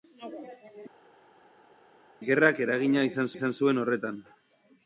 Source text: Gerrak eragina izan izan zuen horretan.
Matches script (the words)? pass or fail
pass